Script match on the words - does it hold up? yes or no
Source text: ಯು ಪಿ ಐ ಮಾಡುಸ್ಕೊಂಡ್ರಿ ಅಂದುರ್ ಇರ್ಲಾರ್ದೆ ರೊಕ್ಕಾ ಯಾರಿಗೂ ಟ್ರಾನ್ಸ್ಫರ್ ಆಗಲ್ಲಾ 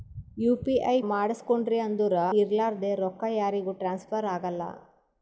yes